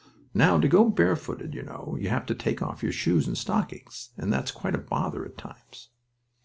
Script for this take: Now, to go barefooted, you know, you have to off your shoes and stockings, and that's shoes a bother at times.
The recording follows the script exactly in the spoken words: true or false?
false